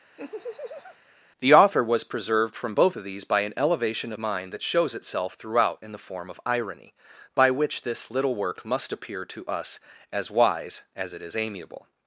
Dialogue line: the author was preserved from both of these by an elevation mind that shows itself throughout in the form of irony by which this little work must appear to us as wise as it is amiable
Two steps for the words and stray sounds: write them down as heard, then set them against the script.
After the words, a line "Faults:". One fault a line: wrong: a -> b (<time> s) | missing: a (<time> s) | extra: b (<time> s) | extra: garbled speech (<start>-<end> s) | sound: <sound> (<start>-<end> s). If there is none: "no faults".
the author was preserved from both of these by an elevation mind that shows itself throughout in the form of irony by which this little work must appear to us as wise as it is amiable
Faults:
sound: laugh (0.2-1.0 s)